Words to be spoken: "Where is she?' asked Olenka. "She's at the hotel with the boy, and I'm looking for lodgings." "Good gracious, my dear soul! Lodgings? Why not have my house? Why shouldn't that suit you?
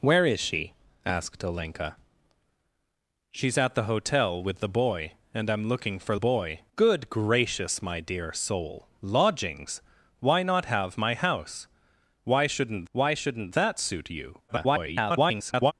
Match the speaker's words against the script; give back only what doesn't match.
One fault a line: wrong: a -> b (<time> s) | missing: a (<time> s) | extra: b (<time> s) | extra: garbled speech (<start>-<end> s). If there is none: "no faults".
wrong: lodgings -> boy (6.1 s)
extra: why shouldn't (12.9 s)
extra: garbled speech (14.5-15.7 s)